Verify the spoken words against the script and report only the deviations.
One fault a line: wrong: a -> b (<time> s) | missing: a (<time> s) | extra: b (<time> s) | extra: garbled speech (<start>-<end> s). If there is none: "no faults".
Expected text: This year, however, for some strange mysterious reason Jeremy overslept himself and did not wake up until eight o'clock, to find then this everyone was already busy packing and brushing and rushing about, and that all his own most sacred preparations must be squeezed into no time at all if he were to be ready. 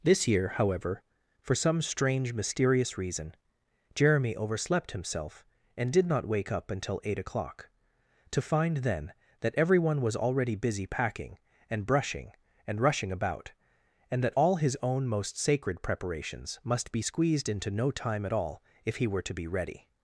wrong: this -> that (9.4 s)